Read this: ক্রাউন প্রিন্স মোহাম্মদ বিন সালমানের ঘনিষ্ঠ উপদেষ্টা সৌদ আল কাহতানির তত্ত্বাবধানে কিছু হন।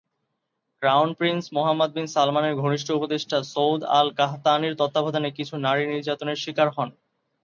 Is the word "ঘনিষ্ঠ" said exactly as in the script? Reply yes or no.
yes